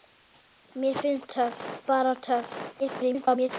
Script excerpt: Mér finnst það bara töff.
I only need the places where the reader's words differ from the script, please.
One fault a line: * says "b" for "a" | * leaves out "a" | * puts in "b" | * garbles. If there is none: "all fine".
* says "töff" for "það"
* garbles